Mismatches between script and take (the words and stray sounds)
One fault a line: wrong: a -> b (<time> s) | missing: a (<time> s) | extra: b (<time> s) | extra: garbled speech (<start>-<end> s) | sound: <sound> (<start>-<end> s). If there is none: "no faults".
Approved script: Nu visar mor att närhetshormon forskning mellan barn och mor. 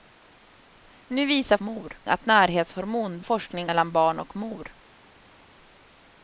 no faults